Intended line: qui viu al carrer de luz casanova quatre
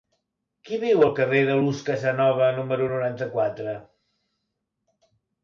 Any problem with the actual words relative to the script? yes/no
yes